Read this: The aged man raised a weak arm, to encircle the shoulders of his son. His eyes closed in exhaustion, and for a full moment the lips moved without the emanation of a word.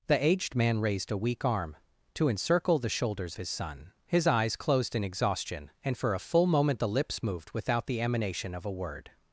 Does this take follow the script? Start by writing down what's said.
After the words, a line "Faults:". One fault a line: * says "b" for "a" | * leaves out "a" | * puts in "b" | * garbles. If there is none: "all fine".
The aged man raised a weak arm, to encircle the shoulders his son. His eyes closed in exhaustion, and for a full moment the lips moved without the emanation of a word.
Faults:
* leaves out "of"